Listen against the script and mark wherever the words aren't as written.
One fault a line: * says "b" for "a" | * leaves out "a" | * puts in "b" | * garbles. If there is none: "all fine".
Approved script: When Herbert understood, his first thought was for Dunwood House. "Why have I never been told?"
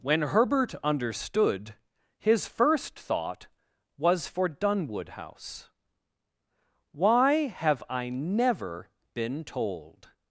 all fine